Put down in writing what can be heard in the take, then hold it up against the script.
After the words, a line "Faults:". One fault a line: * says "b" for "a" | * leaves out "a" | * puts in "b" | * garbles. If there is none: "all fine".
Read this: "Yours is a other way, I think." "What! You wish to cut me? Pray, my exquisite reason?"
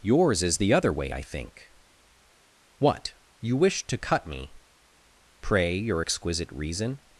"Yours is the other way, I think." "What! You wish to cut me? Pray, your exquisite reason?"
Faults:
* says "the" for "a"
* says "your" for "my"